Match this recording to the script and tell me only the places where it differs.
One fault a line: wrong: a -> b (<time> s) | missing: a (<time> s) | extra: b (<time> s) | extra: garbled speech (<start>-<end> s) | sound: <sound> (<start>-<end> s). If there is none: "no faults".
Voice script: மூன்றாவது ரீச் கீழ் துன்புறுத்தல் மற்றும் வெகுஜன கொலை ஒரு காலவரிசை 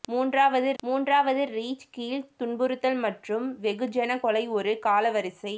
extra: மூன்றாவது (0.8 s)